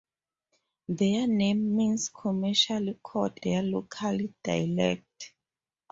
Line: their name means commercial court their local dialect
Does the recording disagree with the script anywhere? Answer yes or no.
no